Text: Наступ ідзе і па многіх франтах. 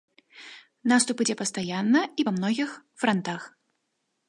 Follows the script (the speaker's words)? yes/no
no